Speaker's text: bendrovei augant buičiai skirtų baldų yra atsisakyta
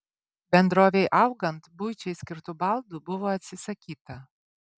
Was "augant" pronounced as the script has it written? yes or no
yes